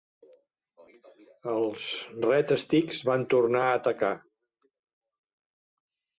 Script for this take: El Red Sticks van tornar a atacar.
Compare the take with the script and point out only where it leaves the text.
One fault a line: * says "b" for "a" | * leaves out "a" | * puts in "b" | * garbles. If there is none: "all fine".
* says "Els" for "El"